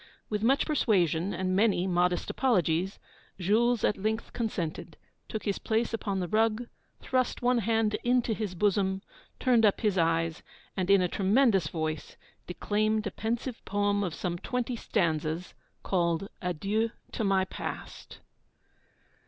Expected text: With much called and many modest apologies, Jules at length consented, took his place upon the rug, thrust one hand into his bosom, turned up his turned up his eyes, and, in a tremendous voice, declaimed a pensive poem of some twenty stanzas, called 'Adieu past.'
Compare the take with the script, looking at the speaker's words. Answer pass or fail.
fail